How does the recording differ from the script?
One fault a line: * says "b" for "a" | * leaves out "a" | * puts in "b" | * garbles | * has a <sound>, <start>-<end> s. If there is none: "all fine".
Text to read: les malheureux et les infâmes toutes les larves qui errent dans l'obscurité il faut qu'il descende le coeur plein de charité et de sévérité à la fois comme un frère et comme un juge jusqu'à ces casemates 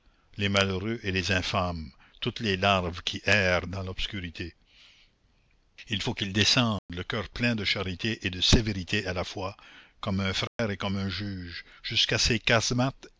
* has a dropout, 6.8-6.9 s
* has a dropout, 10.5-10.6 s